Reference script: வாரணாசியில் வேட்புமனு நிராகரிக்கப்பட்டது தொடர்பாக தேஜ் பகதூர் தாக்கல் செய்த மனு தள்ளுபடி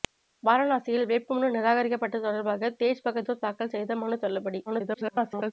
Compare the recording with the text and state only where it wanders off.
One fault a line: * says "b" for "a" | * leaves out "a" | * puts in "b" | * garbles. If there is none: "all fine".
* garbles